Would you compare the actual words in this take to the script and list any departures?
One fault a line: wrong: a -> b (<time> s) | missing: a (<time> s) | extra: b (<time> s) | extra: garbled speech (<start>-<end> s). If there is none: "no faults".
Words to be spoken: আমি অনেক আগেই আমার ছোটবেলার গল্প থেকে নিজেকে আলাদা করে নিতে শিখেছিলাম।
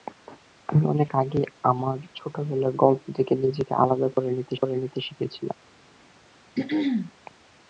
extra: করে নিতে (4.5 s)